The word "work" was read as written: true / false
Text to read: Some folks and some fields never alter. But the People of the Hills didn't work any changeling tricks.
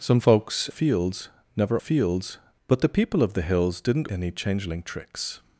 false